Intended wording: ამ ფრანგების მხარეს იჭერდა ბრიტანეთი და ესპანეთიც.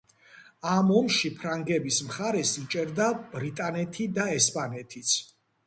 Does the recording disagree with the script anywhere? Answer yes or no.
yes